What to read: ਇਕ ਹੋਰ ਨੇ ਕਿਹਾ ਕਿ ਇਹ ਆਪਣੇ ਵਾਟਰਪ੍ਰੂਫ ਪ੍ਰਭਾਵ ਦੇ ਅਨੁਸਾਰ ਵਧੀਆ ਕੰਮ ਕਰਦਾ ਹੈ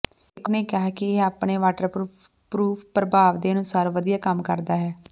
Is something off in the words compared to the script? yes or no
yes